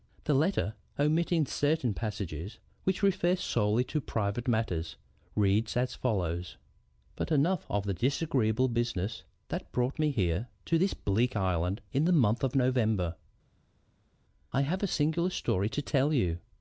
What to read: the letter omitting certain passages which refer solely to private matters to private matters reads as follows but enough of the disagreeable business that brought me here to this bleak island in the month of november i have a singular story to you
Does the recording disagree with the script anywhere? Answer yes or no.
yes